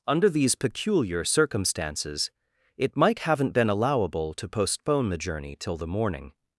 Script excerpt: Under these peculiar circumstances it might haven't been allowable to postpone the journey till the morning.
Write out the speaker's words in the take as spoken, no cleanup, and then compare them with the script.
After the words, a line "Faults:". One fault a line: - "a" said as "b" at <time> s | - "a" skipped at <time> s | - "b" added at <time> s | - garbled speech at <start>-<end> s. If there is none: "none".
Under these peculiar circumstances it might haven't been allowable to postpone the journey till the morning.
Faults:
none